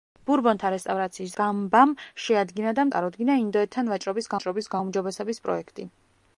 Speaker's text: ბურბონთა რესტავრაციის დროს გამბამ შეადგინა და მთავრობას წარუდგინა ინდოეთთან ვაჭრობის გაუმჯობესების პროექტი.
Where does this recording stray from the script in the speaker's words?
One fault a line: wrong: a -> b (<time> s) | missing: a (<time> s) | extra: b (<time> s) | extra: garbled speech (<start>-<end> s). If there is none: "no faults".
missing: დროს (1.4 s)
missing: მთავრობას (2.9 s)
extra: ვაჭრობის (4.3 s)